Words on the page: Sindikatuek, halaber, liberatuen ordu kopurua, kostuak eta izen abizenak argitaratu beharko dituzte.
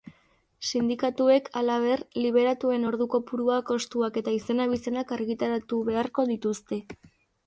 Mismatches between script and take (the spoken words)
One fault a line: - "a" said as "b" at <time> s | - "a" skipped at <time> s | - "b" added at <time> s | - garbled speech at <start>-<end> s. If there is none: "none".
none